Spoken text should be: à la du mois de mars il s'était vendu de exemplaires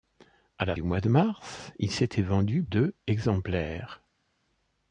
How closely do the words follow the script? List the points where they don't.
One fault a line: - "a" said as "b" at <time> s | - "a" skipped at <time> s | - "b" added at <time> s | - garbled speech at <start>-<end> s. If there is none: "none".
none